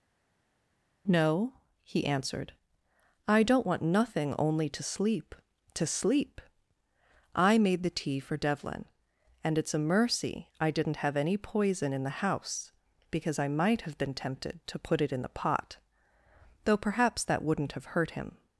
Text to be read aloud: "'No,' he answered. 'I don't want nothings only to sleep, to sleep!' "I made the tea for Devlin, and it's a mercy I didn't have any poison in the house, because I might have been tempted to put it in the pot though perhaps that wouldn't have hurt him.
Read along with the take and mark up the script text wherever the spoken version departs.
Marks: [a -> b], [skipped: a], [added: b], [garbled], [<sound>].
"'No,' he answered. 'I don't want [nothings -> nothing] only to sleep, to sleep!' "I made the tea for Devlin, and it's a mercy I didn't have any poison in the house, because I might have been tempted to put it in the pot though perhaps that wouldn't have hurt him.